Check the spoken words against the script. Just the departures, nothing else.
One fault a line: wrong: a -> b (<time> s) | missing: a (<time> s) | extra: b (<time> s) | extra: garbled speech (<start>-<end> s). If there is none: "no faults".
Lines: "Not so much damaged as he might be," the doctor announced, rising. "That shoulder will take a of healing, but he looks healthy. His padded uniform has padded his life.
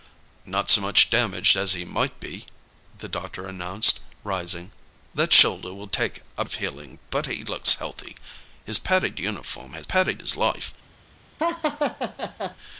no faults